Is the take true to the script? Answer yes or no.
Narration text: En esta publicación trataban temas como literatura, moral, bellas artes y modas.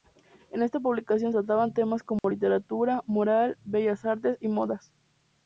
yes